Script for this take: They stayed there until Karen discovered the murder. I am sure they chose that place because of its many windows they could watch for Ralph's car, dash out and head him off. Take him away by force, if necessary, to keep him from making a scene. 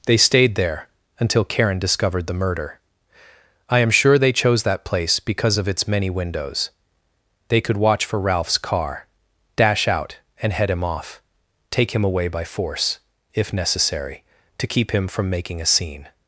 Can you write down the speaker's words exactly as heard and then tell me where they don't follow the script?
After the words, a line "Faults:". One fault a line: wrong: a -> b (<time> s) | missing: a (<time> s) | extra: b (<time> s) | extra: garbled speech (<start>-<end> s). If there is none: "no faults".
They stayed there until Karen discovered the murder. I am sure they chose that place because of its many windows they could watch for Ralph's car, dash out and head him off. Take him away by force, if necessary, to keep him from making a scene.
Faults:
no faults